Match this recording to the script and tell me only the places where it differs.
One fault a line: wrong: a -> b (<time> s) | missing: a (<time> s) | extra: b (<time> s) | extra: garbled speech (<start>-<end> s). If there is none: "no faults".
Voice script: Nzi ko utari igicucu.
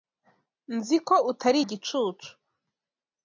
no faults